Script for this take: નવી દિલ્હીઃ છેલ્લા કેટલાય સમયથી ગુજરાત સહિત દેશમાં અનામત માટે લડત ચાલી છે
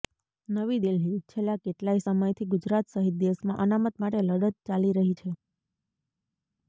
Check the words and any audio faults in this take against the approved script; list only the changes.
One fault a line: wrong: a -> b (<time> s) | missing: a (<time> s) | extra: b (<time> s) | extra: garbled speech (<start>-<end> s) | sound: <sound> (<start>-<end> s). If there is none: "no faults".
extra: રહી (5.0 s)